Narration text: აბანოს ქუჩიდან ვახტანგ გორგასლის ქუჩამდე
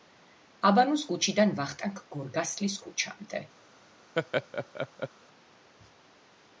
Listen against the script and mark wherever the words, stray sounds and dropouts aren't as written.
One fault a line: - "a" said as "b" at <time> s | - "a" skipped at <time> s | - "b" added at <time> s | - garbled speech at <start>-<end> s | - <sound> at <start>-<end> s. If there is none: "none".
- laugh at 4.2-5.1 s